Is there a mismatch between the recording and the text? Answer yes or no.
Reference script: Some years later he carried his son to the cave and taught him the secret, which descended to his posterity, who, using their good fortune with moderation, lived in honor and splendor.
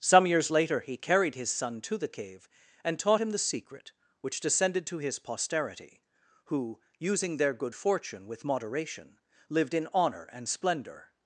no